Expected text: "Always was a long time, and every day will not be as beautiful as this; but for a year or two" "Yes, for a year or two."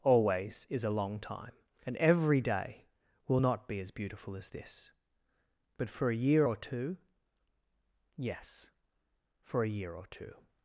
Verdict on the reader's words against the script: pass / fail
fail